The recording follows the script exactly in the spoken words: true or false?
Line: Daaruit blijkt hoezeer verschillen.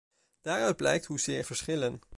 true